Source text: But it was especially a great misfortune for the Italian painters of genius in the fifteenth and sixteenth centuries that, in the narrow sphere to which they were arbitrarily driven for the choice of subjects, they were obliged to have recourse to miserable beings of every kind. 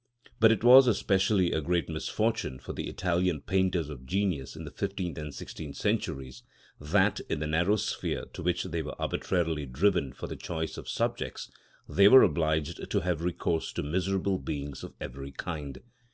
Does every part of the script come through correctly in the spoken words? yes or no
yes